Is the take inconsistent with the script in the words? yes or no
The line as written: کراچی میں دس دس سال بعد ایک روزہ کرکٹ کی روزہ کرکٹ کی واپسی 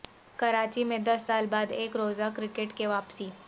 yes